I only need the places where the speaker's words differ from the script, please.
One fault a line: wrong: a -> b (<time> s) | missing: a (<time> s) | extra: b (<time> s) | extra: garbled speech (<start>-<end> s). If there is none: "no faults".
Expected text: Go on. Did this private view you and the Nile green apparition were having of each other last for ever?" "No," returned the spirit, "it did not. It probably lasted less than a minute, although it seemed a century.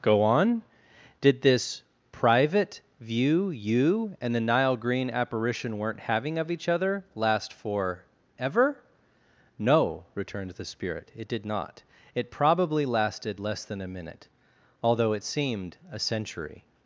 wrong: were -> weren't (5.8 s)